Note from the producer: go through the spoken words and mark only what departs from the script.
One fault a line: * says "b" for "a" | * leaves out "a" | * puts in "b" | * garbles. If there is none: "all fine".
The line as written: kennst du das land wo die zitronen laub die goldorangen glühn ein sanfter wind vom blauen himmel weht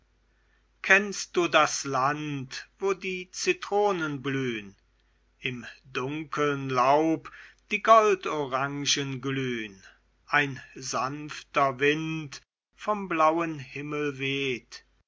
* puts in "blühn im dunkeln"